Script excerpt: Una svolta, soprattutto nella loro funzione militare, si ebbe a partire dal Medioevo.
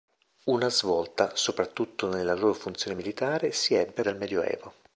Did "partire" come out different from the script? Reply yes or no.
yes